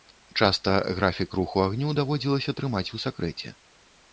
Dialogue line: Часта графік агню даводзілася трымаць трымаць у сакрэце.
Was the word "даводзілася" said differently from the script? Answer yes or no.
no